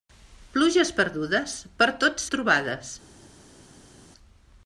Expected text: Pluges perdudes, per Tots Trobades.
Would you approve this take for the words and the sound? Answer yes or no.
yes